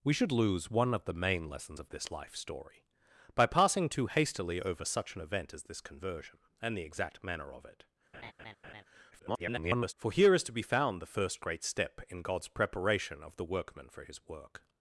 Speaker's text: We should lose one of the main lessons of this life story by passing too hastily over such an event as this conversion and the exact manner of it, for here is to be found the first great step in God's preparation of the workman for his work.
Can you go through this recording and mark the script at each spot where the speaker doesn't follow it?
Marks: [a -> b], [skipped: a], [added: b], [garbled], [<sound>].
We should lose one of the main lessons of this life story by passing too hastily over such an event as this conversion and the exact manner of it, [laugh] [garbled] for here is to be found the first great step in God's preparation of the workman for his work.